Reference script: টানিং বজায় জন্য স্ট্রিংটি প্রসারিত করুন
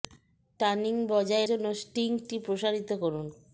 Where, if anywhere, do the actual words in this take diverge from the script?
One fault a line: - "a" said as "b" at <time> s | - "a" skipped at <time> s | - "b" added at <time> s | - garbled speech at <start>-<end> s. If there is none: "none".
none